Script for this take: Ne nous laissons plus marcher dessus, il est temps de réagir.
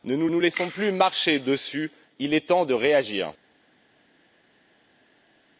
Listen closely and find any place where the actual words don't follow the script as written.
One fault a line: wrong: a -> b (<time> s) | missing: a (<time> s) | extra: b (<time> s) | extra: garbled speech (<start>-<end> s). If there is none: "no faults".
extra: nous (0.3 s)